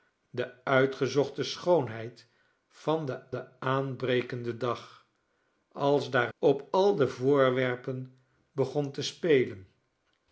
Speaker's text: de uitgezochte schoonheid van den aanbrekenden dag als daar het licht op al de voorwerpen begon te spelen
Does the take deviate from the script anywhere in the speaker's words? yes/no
yes